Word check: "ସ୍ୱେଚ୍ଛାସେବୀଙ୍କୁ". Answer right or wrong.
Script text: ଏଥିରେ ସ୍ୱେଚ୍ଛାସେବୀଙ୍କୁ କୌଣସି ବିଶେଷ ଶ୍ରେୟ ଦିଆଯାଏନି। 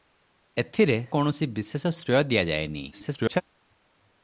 wrong